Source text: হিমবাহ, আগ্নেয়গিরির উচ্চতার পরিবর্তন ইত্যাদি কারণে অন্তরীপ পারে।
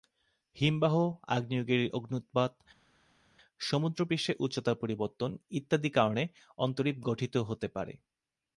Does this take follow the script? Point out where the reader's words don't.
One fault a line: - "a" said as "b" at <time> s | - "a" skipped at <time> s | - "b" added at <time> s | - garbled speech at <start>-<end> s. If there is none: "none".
- "অগ্ন্যুৎপাত সমুদ্রপৃষ্ঠের" added at 1.9 s
- "গঠিত হতে" added at 7.1 s